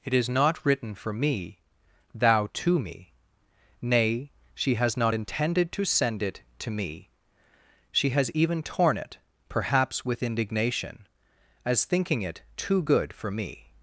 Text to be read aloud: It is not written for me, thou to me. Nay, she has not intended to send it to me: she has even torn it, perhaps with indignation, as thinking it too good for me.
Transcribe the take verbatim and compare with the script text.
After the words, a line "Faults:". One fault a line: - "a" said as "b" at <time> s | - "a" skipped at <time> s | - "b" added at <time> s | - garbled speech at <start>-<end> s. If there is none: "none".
It is not written for me, thou to me. Nay, she has not intended to send it to me: she has even torn it, perhaps with indignation, as thinking it too good for me.
Faults:
none